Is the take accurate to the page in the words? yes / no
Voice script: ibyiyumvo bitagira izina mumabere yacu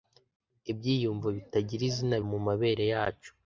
yes